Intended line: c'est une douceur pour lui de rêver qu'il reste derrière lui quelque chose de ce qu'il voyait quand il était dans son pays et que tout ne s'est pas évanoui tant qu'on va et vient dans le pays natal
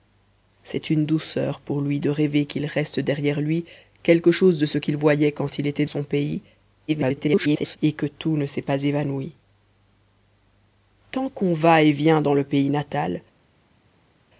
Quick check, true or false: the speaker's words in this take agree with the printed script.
false